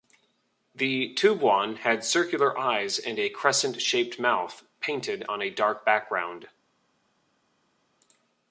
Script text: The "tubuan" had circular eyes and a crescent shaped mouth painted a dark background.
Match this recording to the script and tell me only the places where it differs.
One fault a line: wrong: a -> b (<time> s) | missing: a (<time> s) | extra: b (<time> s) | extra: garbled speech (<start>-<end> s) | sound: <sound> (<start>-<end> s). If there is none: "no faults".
extra: on (5.3 s)